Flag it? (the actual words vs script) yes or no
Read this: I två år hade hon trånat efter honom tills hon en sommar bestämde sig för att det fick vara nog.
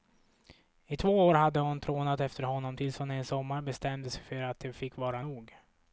no